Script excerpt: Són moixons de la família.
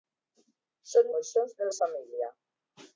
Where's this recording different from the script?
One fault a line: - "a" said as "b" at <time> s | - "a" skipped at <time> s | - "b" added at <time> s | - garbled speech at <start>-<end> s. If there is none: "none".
none